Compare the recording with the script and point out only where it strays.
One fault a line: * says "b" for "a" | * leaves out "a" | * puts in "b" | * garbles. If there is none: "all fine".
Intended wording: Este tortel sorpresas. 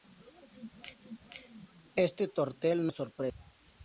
all fine